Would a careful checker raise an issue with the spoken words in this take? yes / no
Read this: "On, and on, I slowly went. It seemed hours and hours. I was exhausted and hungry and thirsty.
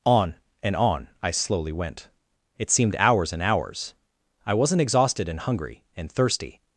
yes